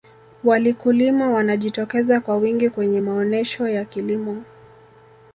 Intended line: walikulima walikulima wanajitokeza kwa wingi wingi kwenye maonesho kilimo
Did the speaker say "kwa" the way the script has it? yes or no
yes